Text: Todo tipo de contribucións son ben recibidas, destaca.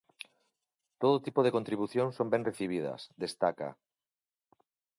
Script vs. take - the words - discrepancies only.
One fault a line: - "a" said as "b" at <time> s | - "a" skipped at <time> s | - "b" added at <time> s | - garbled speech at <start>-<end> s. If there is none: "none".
none